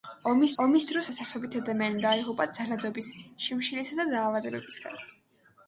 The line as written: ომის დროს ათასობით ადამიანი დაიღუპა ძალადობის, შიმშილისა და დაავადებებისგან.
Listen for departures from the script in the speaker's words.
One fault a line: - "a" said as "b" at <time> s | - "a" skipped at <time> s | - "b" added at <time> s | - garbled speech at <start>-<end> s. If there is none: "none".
- "ომის" added at 0.6 s